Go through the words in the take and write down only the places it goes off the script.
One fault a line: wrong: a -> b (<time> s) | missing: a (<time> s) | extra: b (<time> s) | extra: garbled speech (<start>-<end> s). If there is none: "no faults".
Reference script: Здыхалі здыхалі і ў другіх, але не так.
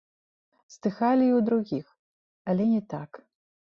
missing: здыхалі (1.2 s)